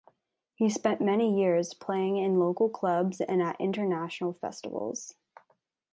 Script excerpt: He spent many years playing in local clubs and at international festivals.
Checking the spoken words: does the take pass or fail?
pass